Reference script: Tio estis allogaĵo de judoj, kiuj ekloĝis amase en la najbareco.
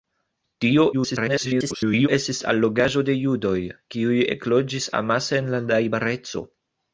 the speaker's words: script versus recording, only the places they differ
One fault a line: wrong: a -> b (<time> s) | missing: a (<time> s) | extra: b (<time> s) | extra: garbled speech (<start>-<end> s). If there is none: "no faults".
extra: garbled speech (0.9-2.1 s)